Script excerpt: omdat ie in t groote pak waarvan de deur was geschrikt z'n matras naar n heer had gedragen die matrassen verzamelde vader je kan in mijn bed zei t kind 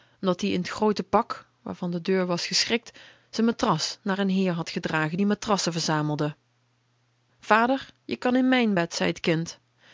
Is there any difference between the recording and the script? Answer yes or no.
no